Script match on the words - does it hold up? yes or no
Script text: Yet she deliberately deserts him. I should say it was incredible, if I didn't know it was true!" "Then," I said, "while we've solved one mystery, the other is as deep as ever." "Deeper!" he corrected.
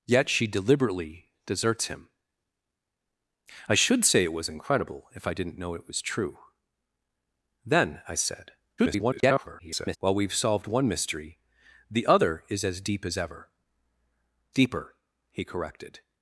no